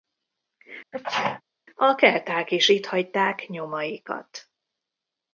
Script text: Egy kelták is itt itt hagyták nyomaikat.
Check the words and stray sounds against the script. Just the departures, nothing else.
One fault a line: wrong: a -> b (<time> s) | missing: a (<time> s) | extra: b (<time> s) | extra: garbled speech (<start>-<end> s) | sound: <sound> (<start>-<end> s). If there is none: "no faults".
sound: sneeze (0.9-1.4 s)
wrong: Egy -> A (1.8 s)
missing: itt (2.9 s)